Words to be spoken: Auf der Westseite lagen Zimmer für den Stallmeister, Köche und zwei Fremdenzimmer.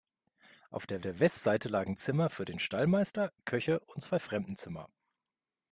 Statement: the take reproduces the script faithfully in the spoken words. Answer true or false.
false